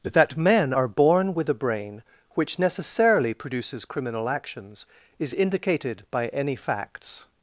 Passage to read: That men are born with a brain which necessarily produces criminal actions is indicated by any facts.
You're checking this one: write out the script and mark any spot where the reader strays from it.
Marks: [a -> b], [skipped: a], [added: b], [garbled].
That men are born with a brain which necessarily produces criminal actions is indicated by any facts.